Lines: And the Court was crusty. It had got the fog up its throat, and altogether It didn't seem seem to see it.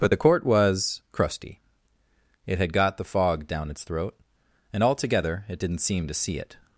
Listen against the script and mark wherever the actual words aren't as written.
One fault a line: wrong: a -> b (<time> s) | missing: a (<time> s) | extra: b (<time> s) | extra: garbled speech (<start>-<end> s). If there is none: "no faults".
wrong: And -> But (0.0 s)
wrong: up -> down (3.5 s)
missing: seem (6.1 s)